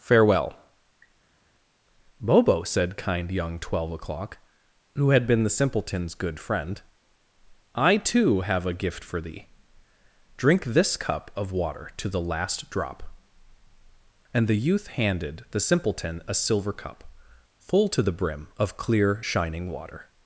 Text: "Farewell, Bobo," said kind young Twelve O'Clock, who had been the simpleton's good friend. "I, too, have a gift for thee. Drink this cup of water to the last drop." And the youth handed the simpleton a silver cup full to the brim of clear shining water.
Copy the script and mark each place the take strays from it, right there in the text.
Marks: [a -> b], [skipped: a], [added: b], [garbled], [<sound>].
"Farewell, Bobo," said kind young Twelve O'Clock, who had been the simpleton's good friend. "I, too, have a gift for thee. Drink this cup of water to the last drop." And the youth handed the simpleton a silver cup full to the brim of clear shining water.